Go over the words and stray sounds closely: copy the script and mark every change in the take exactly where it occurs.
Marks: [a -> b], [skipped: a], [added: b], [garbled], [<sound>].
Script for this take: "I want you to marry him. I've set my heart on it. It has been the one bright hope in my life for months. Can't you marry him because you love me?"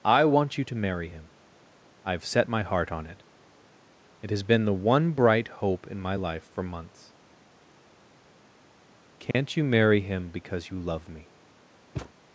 "I want you to marry him. I've set my heart on it. It has been the one bright hope in my life for months. Can't [dropout] you marry him because you love me?" [thud]